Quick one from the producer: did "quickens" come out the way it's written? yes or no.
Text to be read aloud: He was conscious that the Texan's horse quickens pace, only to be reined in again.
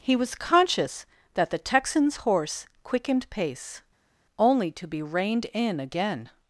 no